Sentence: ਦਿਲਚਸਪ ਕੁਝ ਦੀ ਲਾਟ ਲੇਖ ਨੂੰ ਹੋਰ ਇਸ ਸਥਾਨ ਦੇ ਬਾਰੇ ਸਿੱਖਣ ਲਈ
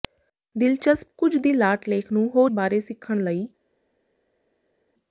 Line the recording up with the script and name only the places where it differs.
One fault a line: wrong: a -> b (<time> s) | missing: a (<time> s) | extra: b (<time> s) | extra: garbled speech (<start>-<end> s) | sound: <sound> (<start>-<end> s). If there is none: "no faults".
missing: ਇਸ ਸਥਾਨ ਦੇ (2.5 s)